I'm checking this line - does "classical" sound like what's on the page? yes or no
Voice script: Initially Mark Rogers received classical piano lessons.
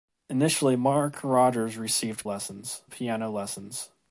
no